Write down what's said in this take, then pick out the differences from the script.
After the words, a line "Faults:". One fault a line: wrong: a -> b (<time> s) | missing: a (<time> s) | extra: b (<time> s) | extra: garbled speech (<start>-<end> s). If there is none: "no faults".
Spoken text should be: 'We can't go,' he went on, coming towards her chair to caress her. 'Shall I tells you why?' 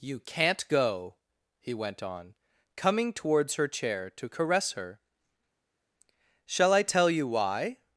'You can't go,' he went on, coming towards her chair to caress her. 'Shall I tell you why?'
Faults:
wrong: We -> You (0.0 s)
wrong: tells -> tell (6.8 s)